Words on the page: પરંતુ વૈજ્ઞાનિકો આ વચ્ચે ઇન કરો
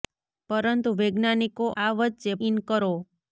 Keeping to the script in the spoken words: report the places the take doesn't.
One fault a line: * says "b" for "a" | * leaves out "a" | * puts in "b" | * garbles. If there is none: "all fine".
all fine